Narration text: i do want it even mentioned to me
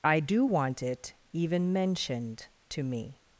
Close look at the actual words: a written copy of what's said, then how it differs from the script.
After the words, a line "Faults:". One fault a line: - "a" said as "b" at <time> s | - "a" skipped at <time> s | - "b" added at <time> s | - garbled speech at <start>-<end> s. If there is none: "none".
i do want it even mentioned to me
Faults:
none